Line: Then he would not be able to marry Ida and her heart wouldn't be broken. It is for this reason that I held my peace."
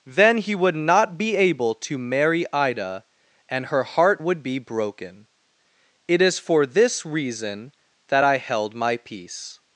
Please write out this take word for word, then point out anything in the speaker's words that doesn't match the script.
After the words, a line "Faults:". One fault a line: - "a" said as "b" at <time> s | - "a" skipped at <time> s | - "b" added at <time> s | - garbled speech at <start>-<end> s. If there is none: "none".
Then he would not be able to marry Ida and her heart would be broken. It is for this reason that I held my peace."
Faults:
- "wouldn't" said as "would" at 4.2 s